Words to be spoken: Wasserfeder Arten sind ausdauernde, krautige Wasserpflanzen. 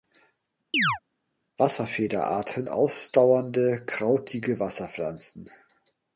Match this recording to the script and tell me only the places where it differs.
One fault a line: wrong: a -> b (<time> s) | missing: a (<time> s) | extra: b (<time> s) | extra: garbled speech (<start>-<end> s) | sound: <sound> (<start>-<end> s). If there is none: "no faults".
sound: chirp (0.7-1.0 s)
missing: sind (2.7 s)